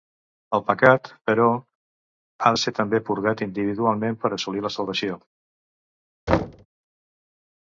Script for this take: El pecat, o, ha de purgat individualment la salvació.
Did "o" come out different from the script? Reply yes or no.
yes